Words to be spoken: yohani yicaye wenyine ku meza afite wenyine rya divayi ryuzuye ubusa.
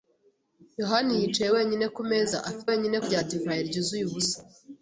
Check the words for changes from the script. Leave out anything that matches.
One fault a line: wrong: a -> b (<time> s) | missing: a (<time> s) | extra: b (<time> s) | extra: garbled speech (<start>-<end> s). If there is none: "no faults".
no faults